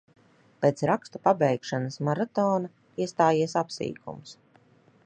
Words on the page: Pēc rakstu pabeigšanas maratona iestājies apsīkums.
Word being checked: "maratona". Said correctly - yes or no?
yes